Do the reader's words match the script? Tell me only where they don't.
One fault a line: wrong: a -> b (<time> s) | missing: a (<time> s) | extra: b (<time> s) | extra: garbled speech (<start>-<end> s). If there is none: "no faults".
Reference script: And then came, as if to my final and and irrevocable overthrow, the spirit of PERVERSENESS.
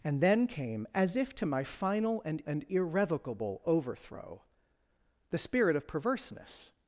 no faults